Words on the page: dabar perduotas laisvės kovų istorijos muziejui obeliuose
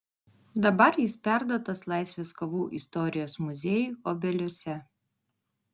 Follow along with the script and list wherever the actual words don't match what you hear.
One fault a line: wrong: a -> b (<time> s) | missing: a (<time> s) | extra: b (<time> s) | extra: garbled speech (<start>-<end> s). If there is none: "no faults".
extra: jis (1.0 s)